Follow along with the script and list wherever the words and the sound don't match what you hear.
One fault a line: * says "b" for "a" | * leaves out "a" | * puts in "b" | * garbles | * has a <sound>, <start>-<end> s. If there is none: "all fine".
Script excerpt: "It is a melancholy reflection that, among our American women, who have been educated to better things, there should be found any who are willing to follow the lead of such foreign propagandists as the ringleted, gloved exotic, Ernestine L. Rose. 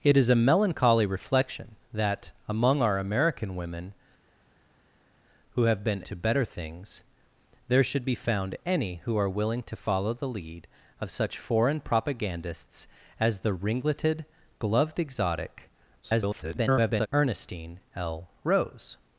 * leaves out "educated"
* garbles